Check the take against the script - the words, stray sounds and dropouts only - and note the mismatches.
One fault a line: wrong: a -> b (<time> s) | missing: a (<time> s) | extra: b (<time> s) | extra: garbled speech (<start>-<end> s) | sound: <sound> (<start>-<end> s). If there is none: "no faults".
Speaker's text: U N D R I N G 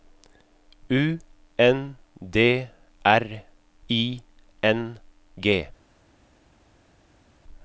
no faults